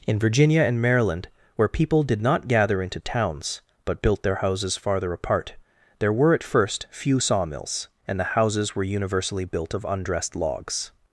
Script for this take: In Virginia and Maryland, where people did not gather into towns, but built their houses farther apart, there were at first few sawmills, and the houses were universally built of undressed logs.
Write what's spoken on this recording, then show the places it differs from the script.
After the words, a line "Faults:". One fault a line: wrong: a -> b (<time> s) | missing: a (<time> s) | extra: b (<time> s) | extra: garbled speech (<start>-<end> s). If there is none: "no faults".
In Virginia and Maryland, where people did not gather into towns, but built their houses farther apart, there were at first few sawmills, and the houses were universally built of undressed logs.
Faults:
no faults